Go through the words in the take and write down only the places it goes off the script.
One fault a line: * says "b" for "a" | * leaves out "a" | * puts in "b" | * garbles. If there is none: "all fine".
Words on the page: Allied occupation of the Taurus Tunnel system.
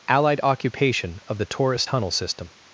all fine